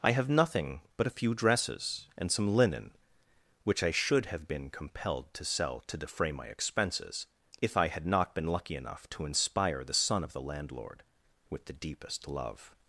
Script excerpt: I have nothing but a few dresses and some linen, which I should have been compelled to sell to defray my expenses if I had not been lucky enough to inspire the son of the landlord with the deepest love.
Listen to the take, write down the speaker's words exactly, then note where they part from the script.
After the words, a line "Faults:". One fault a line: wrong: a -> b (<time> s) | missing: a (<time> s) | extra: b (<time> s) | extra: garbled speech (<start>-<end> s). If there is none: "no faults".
I have nothing but a few dresses and some linen, which I should have been compelled to sell to defray my expenses if I had not been lucky enough to inspire the son of the landlord with the deepest love.
Faults:
no faults